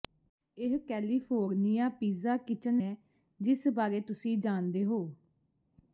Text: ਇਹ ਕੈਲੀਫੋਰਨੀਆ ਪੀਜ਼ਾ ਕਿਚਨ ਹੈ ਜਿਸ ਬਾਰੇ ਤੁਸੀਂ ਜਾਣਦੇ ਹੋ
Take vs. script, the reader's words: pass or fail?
pass